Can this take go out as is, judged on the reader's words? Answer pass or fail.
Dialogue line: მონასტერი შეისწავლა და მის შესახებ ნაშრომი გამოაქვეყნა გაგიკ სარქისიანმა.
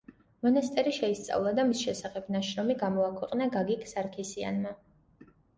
pass